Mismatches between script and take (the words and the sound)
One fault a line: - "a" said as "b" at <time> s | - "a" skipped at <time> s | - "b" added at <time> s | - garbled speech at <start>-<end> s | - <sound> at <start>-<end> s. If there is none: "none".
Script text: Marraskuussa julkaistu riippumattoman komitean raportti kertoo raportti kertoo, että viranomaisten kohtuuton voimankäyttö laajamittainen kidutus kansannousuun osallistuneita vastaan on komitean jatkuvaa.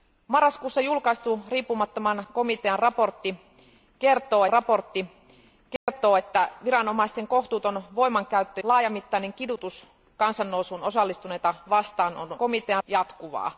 - dropout at 5.8-5.9 s